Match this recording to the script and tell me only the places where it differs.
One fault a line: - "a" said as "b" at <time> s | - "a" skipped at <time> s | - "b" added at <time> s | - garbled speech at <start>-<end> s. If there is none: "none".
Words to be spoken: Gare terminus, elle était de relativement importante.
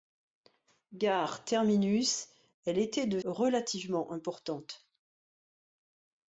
none